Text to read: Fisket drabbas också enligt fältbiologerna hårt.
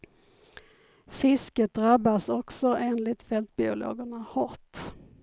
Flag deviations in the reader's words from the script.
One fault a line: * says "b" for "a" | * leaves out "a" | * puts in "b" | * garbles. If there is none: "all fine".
all fine